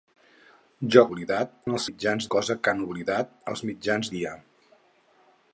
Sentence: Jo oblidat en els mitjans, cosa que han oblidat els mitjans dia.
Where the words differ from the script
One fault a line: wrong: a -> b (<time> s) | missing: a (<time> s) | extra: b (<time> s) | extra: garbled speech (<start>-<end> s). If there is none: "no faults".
no faults